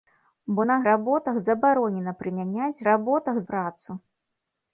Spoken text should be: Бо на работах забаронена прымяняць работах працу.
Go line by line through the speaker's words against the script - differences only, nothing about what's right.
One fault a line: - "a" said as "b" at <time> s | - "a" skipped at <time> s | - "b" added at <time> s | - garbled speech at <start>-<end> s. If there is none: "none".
none